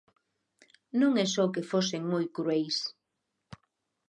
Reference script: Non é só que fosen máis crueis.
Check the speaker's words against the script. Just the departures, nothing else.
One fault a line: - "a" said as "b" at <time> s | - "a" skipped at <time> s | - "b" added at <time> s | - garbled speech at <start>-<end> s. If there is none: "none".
- "máis" said as "moi" at 2.1 s